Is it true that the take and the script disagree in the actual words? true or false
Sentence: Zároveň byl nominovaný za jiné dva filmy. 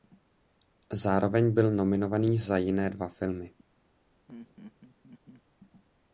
false